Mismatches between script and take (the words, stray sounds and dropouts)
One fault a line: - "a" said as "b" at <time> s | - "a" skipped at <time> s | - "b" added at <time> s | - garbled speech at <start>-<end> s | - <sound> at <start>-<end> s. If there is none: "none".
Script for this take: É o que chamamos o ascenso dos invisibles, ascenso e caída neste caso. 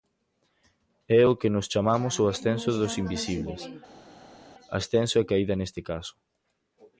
- "nós" added at 1.5 s